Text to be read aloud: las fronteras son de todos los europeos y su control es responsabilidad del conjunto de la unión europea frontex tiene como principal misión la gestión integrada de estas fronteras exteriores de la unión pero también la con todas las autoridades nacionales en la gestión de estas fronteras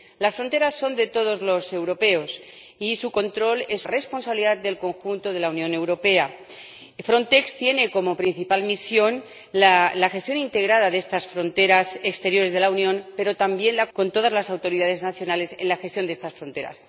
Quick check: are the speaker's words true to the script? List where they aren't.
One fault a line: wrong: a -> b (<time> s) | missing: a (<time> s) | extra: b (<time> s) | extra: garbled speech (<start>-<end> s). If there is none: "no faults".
no faults